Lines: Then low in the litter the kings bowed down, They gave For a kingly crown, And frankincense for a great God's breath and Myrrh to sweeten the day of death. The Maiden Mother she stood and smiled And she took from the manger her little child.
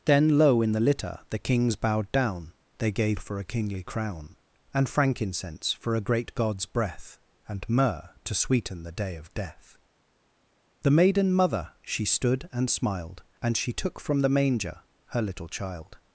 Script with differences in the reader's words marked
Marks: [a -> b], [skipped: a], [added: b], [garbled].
Then low in the litter the kings bowed down, They gave For a kingly crown, And frankincense for a great God's breath and Myrrh to sweeten the day of death. The Maiden Mother she stood and smiled And she took from the manger her little child.